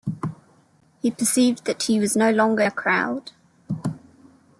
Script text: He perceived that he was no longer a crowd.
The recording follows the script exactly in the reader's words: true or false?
true